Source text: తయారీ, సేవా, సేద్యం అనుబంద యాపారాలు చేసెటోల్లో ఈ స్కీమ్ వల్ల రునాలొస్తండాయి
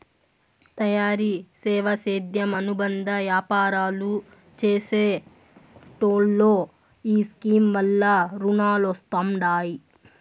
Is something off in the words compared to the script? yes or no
no